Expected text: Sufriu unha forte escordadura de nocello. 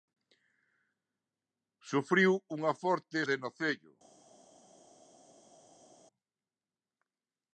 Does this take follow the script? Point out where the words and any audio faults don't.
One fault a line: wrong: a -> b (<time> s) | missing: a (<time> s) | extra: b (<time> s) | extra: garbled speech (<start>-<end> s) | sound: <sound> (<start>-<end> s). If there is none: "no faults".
missing: escordadura (3.2 s)